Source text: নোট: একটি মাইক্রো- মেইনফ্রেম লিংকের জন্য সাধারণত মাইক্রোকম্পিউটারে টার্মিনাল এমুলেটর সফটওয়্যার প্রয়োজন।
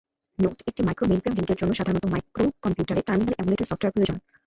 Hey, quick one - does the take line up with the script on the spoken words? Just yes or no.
yes